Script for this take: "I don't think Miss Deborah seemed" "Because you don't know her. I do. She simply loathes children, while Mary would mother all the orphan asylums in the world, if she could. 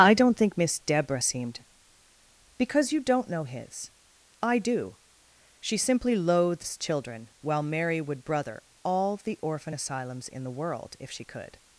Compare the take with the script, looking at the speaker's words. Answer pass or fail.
fail